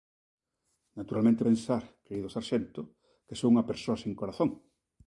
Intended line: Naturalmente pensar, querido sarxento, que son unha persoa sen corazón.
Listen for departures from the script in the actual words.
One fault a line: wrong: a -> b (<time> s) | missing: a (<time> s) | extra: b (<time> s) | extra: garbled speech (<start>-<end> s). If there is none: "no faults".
no faults